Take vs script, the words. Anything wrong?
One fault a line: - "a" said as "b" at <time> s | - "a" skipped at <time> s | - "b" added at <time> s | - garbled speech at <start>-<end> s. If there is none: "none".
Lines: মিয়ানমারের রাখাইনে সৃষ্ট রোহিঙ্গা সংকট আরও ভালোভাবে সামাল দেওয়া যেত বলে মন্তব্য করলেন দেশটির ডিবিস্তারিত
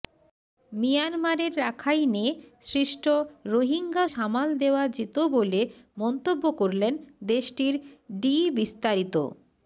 - "সংকট আরও ভালোভাবে" skipped at 4.0 s